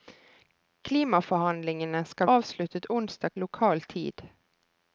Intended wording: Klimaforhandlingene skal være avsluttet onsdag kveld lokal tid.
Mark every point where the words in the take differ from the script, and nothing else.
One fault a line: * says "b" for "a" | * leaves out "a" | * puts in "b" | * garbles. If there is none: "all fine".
* leaves out "være"
* leaves out "kveld"